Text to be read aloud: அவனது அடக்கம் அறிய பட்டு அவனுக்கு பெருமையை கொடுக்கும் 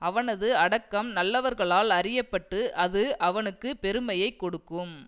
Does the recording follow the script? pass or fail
fail